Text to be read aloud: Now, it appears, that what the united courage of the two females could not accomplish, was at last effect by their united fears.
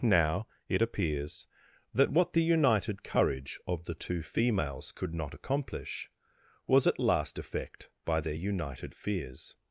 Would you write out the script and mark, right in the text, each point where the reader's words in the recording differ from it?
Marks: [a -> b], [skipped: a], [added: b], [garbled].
Now, it appears, that what the united courage of the two females could not accomplish, was at last effect by their united fears.